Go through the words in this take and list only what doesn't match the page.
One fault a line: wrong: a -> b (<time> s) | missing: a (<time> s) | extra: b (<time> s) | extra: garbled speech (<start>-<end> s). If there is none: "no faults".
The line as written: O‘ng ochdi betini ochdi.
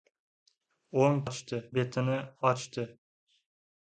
no faults